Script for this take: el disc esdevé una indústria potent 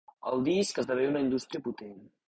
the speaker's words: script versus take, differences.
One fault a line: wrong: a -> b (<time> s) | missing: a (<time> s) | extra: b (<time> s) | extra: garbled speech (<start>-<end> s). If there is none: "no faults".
no faults